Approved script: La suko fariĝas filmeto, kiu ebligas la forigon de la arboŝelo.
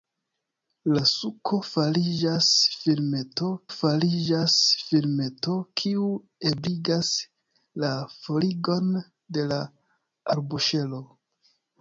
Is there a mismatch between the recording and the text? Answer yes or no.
yes